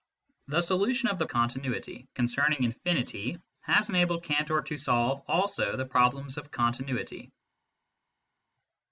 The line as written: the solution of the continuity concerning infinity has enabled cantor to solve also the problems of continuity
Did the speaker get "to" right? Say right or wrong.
right